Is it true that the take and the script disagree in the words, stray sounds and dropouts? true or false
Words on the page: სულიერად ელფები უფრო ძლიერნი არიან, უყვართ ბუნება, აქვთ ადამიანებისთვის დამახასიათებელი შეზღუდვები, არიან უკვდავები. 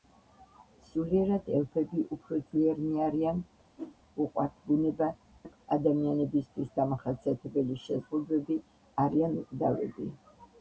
true